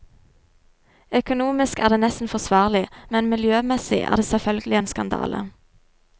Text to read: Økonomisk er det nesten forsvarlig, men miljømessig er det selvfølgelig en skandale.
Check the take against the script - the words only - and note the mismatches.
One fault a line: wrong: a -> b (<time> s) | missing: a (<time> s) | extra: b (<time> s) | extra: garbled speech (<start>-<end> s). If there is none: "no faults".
no faults